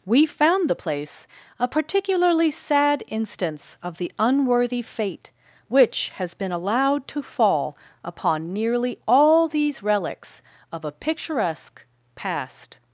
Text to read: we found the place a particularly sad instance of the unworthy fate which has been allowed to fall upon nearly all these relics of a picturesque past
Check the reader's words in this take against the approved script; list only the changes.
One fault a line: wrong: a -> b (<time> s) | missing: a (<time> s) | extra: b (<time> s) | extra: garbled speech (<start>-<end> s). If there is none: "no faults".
no faults